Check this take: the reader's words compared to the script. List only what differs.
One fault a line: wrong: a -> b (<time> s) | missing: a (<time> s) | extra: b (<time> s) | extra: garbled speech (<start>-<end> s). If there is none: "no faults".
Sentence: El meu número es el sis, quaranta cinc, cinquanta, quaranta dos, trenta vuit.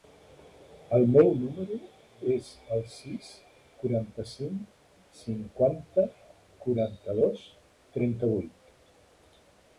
no faults